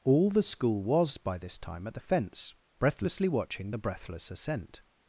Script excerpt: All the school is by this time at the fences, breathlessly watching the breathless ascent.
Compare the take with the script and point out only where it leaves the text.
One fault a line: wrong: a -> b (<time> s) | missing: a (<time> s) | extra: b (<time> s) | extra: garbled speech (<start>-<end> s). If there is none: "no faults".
wrong: is -> was (0.8 s)
wrong: fences -> fence (2.0 s)